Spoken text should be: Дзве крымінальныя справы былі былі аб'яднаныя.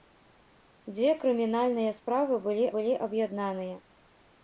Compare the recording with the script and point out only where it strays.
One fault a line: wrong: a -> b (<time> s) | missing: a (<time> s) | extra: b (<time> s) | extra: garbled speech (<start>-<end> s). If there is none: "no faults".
no faults